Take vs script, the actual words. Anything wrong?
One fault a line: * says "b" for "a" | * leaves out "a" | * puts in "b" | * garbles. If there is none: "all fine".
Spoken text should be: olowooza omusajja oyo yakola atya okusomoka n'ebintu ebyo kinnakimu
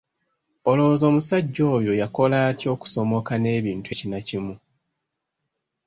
* leaves out "ebyo"